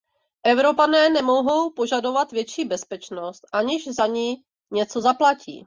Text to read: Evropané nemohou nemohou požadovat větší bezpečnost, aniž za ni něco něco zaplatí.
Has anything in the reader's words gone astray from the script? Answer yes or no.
yes